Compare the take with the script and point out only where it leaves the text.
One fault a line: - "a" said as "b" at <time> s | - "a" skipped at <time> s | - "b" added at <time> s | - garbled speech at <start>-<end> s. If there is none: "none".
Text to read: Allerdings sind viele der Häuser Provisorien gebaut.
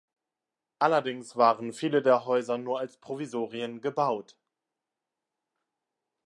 - "sind" said as "waren" at 1.4 s
- "nur als" added at 2.6 s